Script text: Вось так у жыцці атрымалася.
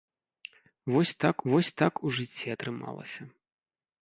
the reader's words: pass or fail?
fail